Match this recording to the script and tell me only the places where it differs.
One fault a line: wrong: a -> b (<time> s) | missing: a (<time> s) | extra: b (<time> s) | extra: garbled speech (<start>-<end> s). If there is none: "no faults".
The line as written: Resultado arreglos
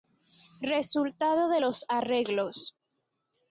extra: de los (1.5 s)